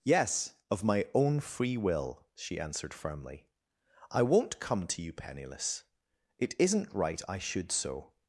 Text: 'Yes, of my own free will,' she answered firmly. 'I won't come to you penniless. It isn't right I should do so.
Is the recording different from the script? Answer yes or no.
yes